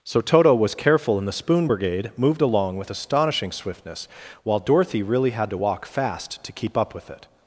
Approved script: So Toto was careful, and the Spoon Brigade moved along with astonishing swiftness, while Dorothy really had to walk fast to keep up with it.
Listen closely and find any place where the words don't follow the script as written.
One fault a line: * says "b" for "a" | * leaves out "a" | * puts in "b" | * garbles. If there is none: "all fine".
all fine